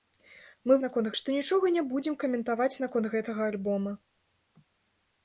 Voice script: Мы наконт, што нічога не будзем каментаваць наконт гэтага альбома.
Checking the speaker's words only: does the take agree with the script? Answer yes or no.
yes